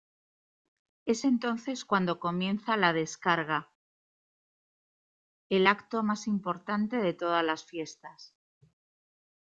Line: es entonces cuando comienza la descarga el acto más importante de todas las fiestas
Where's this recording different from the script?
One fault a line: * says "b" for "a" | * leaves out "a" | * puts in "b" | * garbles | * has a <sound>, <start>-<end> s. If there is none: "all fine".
all fine